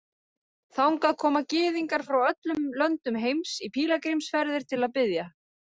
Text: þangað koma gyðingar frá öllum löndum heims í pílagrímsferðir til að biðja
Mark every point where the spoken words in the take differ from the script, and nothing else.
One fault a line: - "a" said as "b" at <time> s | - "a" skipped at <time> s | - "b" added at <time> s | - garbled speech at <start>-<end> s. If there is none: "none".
none